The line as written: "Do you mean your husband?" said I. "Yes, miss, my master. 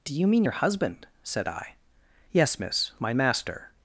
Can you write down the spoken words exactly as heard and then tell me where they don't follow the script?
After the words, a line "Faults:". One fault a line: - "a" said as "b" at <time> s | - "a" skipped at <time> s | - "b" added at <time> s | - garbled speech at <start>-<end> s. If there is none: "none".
"Do you mean your husband?" said I. "Yes, miss, my master.
Faults:
none